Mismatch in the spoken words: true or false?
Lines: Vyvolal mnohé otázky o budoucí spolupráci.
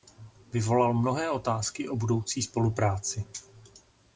false